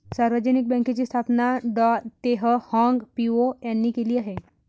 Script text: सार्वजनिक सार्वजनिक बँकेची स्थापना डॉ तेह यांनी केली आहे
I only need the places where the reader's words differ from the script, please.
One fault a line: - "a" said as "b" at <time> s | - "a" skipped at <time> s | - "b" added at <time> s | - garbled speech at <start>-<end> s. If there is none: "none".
- "सार्वजनिक" skipped at 0.7 s
- "हाँग पिओ" added at 2.7 s